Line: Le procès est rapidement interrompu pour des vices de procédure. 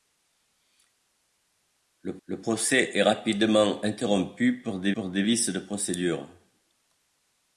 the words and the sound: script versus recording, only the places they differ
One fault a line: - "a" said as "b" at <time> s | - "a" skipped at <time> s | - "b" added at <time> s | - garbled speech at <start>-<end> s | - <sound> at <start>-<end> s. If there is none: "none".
- "le" added at 2.3 s
- "pour des" added at 4.9 s